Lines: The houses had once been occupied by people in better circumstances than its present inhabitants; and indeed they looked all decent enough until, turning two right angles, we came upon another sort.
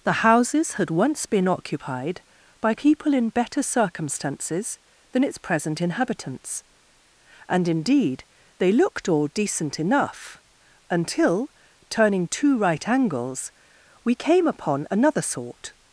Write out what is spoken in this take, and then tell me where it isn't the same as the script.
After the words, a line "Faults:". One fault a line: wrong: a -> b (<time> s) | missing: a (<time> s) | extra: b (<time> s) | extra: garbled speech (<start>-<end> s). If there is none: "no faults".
The houses had once been occupied by people in better circumstances than its present inhabitants; and indeed they looked all decent enough until, turning two right angles, we came upon another sort.
Faults:
no faults